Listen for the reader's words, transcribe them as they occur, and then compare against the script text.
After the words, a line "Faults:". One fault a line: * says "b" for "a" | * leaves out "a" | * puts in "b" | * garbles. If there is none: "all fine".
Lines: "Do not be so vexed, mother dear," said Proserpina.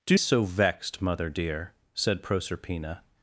"Do so vexed, mother dear," said Proserpina.
Faults:
* leaves out "not be"